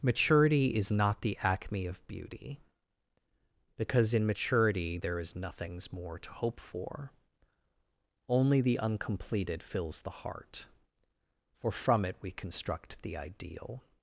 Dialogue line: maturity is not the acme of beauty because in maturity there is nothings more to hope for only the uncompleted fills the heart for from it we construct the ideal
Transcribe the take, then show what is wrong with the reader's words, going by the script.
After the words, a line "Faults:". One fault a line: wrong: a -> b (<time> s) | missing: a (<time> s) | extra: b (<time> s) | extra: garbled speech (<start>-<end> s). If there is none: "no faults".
maturity is not the acme of beauty because in maturity there is nothings more to hope for only the uncompleted fills the heart for from it we construct the ideal
Faults:
no faults